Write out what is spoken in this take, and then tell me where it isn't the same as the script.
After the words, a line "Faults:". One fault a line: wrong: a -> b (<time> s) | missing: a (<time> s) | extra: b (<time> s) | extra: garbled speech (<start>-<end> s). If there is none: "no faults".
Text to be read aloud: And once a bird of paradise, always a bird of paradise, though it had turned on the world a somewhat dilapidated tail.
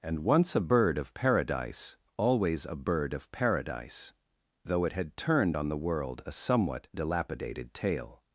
And once a bird of paradise, always a bird of paradise, though it had turned on the world a somewhat dilapidated tail.
Faults:
no faults